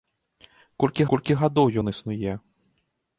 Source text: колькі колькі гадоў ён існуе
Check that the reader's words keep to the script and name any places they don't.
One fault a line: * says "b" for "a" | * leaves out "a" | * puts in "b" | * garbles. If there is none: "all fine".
all fine